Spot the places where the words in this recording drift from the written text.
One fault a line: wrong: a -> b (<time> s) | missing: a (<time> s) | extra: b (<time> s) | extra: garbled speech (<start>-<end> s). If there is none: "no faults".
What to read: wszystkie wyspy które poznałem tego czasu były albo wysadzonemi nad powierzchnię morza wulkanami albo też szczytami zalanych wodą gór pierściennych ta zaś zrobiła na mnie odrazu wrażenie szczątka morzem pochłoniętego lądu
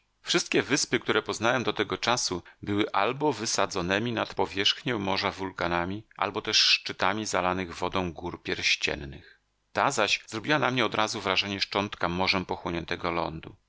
extra: do (1.6 s)